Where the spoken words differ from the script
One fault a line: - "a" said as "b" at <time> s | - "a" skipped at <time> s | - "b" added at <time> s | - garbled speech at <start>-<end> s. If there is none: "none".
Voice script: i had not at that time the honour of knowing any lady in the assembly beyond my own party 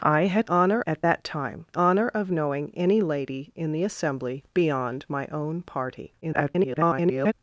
- "not" said as "honour" at 0.5 s
- "the" skipped at 1.7 s
- garbled speech at 6.2-7.3 s